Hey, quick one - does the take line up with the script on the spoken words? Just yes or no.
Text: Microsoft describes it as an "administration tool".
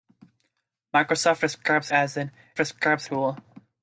no